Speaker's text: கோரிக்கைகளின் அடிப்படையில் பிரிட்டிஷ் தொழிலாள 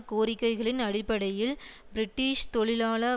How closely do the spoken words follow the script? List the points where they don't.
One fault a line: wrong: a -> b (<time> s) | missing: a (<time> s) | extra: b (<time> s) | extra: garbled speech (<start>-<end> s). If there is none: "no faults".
no faults